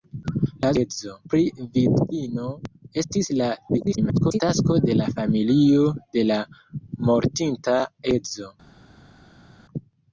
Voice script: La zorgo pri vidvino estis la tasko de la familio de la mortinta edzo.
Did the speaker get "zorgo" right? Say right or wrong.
wrong